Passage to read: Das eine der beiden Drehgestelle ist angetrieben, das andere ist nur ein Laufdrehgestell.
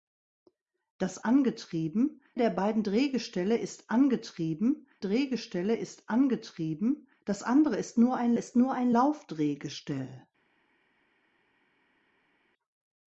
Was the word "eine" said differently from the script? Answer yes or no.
yes